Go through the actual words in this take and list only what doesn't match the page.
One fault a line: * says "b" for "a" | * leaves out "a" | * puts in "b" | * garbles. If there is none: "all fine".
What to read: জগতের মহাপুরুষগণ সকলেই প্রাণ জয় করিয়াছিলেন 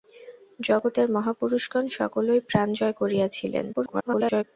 * garbles